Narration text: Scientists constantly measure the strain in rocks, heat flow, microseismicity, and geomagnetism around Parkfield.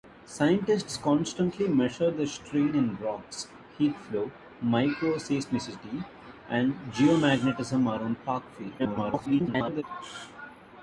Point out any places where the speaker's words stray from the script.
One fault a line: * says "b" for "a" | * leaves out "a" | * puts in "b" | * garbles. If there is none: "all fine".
* garbles